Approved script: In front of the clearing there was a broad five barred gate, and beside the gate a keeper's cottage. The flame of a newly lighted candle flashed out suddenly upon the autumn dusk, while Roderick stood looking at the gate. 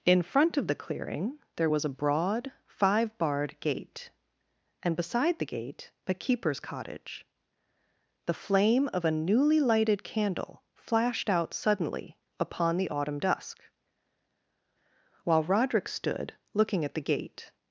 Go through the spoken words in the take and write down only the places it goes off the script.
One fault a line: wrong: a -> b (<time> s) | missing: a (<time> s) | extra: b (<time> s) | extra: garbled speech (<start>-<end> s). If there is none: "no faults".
no faults